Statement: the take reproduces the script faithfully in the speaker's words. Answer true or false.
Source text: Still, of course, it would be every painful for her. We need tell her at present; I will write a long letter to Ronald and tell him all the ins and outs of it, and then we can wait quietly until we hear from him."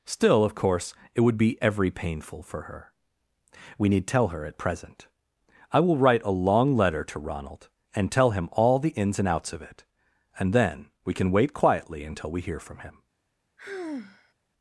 true